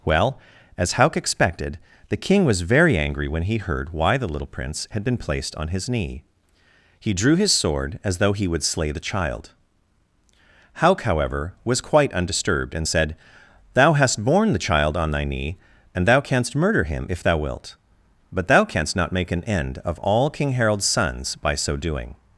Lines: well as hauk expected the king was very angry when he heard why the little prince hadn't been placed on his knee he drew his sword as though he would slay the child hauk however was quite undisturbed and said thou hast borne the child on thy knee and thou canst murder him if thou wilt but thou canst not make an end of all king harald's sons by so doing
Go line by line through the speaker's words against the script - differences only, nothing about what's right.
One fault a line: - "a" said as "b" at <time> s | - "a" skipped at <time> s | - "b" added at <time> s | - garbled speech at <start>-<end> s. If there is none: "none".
- "hadn't" said as "had" at 4.9 s